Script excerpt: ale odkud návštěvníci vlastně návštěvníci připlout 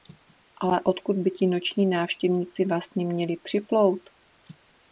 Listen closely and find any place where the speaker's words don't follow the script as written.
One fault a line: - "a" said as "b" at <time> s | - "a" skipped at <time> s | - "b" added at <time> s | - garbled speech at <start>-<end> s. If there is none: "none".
- "by ti noční" added at 1.2 s
- "návštěvníci" said as "měli" at 3.0 s